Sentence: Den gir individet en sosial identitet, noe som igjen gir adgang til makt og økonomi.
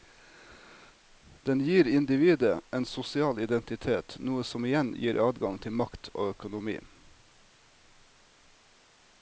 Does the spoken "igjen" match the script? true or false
true